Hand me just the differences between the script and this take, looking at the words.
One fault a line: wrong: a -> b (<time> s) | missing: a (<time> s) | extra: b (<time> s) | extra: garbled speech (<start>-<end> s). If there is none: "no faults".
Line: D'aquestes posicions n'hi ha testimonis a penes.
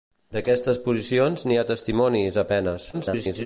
extra: garbled speech (2.9-3.5 s)